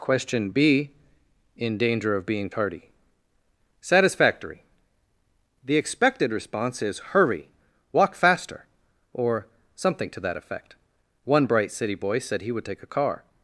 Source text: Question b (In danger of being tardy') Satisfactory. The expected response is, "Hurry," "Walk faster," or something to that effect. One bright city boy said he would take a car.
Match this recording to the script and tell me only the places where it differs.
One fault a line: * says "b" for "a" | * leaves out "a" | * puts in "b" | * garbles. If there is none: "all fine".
all fine